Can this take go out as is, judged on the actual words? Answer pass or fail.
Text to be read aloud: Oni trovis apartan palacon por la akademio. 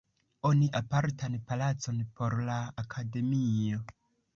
fail